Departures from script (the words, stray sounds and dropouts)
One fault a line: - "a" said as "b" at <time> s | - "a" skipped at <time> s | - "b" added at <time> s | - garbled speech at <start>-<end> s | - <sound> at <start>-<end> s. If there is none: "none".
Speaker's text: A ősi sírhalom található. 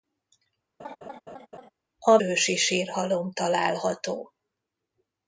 - laugh at 0.8-1.7 s